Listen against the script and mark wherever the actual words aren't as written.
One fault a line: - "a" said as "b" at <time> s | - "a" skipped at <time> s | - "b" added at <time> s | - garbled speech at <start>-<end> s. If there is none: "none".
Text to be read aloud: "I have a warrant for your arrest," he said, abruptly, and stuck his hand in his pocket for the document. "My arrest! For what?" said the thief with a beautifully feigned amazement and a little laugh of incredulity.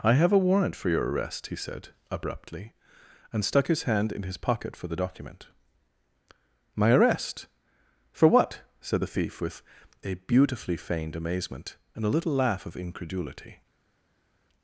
none